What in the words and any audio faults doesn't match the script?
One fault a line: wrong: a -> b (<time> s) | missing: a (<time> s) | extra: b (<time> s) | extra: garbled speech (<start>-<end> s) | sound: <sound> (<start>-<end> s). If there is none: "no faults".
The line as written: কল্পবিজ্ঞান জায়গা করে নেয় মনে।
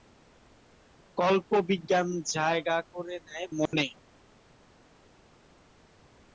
sound: dropout (3.7-3.7 s)